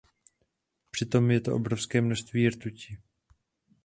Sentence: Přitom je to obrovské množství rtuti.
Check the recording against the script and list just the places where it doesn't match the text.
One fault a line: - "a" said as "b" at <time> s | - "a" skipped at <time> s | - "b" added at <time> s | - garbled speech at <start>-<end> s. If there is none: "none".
none